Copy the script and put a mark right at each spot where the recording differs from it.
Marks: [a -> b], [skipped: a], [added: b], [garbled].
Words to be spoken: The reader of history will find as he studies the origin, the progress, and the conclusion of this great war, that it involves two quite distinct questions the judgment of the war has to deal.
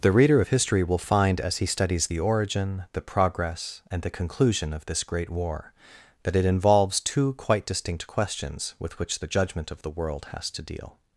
The reader of history will find as he studies the origin, the progress, and the conclusion of this great war, that it involves two quite distinct questions [added: with which] the judgment of the [war -> world] has to deal.